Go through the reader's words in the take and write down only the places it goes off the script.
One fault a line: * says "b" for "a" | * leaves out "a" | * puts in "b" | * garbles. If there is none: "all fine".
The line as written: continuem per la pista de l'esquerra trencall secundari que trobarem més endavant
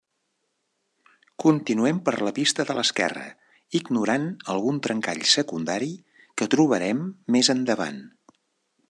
* puts in "ignorant algun"